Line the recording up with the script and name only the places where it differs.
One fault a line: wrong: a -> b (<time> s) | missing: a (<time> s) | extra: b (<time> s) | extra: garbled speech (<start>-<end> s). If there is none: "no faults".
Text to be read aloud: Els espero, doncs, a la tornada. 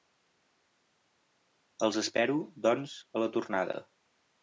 no faults